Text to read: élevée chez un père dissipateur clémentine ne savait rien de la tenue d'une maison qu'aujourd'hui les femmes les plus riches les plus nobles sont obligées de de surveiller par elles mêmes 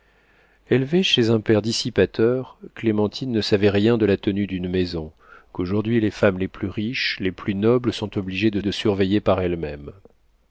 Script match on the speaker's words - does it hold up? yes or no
yes